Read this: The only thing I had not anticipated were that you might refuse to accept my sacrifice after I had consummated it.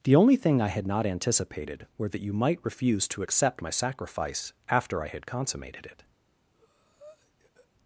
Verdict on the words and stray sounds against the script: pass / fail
fail